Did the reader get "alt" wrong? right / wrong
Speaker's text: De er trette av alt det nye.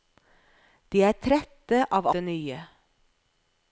wrong